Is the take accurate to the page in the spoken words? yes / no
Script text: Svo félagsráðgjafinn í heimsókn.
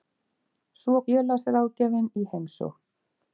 yes